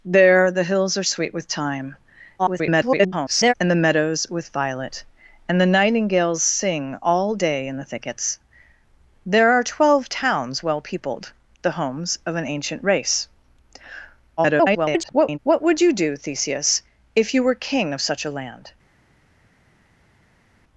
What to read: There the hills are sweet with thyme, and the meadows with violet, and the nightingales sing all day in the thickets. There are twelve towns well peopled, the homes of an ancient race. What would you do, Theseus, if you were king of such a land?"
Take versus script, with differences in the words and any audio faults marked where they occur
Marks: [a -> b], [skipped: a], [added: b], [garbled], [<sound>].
There the hills are sweet with thyme, [garbled] and the meadows with violet, and the nightingales sing all day in the thickets. There are twelve towns well peopled, the homes of an ancient race. [garbled] What would you do, Theseus, if you were king of such a land?"